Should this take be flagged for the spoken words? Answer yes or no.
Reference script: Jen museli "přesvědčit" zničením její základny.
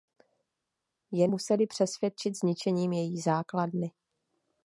no